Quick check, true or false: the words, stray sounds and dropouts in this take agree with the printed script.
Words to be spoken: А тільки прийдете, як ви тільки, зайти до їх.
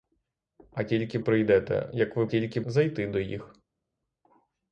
true